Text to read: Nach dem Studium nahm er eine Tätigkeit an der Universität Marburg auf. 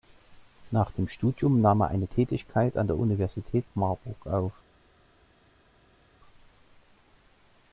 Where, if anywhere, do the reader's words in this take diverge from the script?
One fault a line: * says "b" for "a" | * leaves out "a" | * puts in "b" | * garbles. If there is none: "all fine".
all fine